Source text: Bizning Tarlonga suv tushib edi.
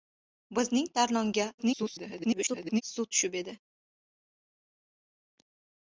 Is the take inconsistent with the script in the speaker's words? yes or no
yes